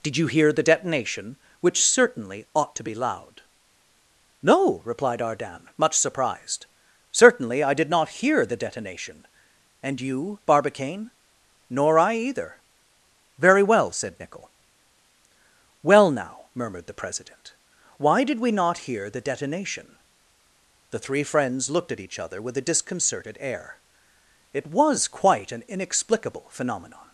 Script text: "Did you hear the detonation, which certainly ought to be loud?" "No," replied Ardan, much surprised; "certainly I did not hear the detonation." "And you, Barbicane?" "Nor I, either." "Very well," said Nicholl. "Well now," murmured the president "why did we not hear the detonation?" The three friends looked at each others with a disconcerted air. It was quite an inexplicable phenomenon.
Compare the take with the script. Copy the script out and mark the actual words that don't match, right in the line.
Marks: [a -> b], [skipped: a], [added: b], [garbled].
"Did you hear the detonation, which certainly ought to be loud?" "No," replied Ardan, much surprised; "certainly I did not hear the detonation." "And you, Barbicane?" "Nor I, either." "Very well," said Nicholl. "Well now," murmured the president "why did we not hear the detonation?" The three friends looked at each [others -> other] with a disconcerted air. It was quite an inexplicable phenomenon.